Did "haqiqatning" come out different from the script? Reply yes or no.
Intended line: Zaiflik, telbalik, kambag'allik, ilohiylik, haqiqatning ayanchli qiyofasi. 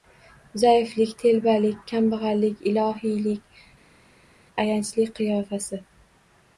yes